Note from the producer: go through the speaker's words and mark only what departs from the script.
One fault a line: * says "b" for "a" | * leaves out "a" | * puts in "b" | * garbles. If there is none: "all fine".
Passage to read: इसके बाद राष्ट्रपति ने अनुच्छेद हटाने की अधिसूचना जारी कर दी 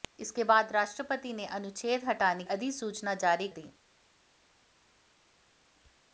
* leaves out "की"
* leaves out "कर"